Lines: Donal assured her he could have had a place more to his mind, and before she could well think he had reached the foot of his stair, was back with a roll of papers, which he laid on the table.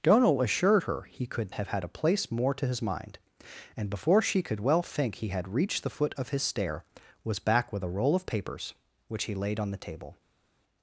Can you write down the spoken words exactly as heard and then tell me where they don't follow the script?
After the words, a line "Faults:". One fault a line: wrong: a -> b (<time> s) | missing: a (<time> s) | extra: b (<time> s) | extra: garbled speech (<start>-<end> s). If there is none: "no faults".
Donal assured her he could have had a place more to his mind, and before she could well think he had reached the foot of his stair, was back with a roll of papers, which he laid on the table.
Faults:
no faults